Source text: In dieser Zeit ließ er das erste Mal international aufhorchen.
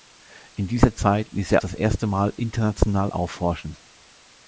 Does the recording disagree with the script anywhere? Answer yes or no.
no